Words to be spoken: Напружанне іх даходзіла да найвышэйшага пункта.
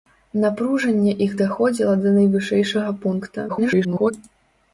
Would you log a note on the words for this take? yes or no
yes